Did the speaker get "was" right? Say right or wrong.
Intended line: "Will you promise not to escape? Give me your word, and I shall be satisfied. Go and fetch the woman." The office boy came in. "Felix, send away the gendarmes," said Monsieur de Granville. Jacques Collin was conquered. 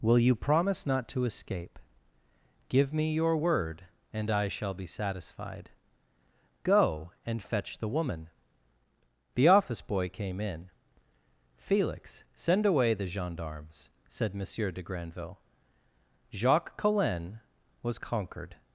right